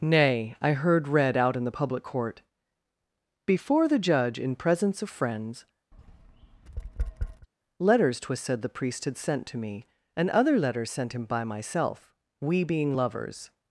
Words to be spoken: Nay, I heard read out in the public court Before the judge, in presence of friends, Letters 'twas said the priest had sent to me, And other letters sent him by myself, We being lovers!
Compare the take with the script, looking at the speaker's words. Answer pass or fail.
pass